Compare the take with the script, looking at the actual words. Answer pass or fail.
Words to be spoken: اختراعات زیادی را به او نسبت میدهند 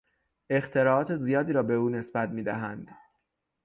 pass